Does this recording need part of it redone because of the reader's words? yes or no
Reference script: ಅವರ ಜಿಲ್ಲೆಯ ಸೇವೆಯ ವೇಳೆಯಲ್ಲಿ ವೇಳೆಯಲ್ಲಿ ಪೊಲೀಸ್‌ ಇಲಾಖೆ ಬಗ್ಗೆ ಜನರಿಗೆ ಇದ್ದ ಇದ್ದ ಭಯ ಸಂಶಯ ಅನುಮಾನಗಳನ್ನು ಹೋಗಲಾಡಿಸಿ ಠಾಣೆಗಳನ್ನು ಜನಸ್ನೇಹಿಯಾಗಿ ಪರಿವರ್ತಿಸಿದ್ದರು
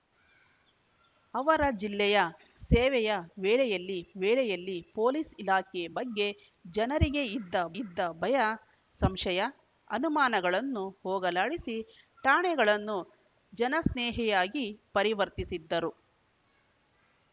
no